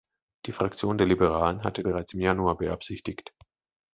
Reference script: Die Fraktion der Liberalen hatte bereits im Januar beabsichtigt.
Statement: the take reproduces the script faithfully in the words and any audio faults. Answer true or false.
true